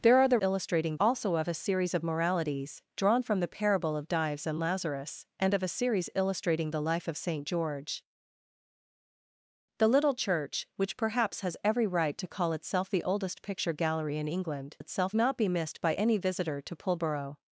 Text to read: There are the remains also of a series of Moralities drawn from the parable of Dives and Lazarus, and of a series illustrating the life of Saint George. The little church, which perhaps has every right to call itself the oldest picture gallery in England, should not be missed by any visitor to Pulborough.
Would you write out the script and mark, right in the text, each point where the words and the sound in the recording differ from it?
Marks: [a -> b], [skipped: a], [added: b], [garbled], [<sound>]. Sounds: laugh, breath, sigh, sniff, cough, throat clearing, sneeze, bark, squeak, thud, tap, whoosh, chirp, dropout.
There are the [remains -> illustrating] also of a series of Moralities drawn from the parable of Dives and Lazarus, and of a series illustrating the life of Saint George. The little church, which perhaps has every right to call itself the oldest picture gallery in England, [should -> itself] not be missed by any visitor to Pulborough.